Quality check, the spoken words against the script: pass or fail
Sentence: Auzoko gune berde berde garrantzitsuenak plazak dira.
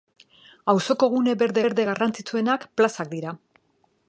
pass